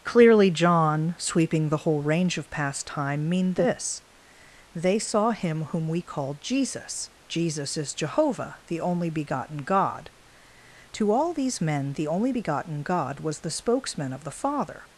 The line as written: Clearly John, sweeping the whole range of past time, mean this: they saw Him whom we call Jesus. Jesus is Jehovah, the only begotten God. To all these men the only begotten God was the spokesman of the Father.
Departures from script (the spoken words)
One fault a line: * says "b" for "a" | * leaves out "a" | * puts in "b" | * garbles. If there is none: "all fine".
all fine